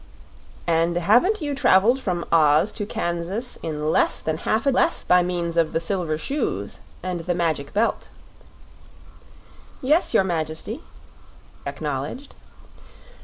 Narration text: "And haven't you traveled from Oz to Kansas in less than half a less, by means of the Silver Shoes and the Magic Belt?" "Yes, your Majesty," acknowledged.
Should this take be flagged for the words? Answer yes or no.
no